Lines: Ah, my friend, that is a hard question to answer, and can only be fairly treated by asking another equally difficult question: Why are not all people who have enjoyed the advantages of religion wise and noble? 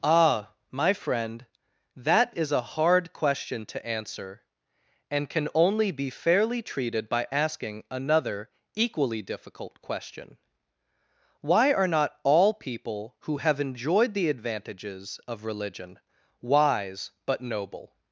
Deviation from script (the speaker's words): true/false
true